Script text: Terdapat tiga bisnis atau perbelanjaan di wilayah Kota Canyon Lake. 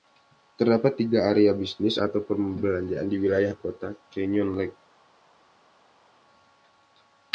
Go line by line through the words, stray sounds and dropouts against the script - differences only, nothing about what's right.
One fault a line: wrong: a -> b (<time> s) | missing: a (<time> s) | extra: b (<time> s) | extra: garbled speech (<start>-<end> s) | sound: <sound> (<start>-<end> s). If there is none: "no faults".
extra: area (1.3 s)